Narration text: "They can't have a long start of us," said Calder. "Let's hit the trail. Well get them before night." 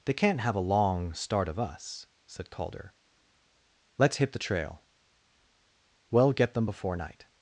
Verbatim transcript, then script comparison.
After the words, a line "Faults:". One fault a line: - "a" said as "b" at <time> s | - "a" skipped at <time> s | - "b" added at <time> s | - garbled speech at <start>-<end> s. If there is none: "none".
"They can't have a long start of us," said Calder. "Let's hit the trail. Well get them before night."
Faults:
none